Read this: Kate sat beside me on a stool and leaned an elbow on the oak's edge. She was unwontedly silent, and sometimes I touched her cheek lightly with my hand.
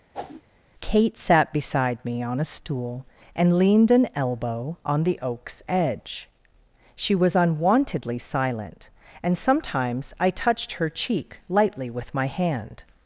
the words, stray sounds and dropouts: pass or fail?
fail